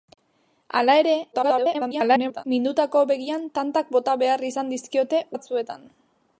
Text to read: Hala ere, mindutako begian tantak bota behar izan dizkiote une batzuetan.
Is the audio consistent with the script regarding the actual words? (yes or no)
no